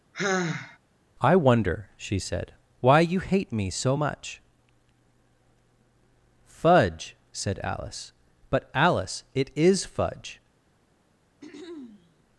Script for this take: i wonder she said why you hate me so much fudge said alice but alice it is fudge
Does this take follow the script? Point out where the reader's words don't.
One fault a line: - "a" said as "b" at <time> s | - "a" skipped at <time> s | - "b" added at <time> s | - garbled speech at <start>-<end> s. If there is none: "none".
none